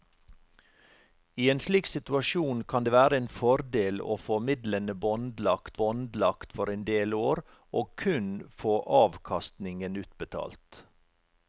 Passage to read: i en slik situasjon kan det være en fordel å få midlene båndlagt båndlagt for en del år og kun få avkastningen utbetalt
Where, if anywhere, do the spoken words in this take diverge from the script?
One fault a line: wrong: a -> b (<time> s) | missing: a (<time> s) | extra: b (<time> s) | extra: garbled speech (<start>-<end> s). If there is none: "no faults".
no faults